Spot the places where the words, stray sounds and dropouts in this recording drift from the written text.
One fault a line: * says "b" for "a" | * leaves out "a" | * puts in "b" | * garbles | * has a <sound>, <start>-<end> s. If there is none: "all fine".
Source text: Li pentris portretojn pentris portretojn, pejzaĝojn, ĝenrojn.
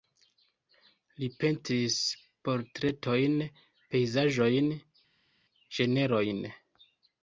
* leaves out "pentris portretojn"